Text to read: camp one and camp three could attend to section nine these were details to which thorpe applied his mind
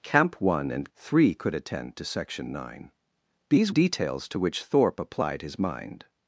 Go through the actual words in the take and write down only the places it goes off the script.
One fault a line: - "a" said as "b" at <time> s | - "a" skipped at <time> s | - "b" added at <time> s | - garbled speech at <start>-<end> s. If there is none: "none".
- "camp" skipped at 0.9 s
- "were" skipped at 3.7 s